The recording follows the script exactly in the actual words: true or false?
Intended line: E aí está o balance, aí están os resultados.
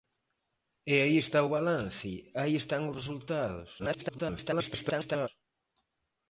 false